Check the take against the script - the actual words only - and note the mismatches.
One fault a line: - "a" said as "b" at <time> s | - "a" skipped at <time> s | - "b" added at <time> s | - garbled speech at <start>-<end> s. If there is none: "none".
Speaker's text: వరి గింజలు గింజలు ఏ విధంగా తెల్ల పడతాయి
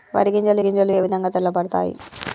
none